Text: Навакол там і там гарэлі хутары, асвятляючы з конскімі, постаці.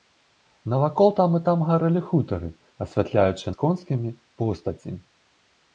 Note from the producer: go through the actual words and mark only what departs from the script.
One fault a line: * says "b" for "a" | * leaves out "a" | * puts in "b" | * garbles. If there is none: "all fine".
all fine